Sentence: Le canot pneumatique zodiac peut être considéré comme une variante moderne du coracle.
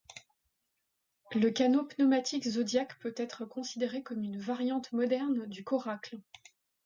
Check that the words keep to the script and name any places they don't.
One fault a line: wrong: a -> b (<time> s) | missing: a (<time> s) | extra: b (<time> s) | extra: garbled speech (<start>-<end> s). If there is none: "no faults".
no faults